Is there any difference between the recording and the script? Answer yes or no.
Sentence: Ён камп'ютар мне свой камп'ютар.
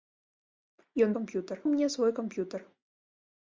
no